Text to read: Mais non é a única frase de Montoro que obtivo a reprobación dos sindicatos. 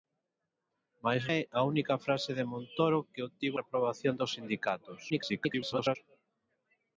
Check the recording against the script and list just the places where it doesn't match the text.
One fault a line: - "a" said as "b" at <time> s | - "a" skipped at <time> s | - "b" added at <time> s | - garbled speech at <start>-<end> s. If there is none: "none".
- "non" skipped at 1.2 s
- "a" skipped at 3.6 s
- garbled speech at 5.1-6.0 s